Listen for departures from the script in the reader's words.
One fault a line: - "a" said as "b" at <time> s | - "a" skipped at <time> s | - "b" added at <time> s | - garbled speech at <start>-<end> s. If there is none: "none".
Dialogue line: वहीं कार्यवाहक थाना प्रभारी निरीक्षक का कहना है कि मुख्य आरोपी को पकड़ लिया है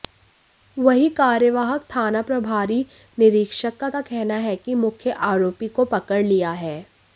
- "का" added at 3.9 s